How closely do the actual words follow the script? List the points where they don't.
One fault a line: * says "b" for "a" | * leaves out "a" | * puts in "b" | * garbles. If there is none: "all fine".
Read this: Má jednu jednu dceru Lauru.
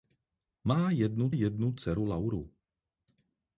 all fine